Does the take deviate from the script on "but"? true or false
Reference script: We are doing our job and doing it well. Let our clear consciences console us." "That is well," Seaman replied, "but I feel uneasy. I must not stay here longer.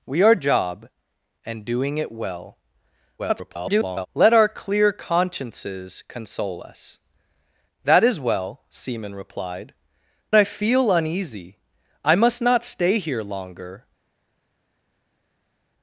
true